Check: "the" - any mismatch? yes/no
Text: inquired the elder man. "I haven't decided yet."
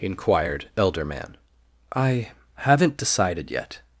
yes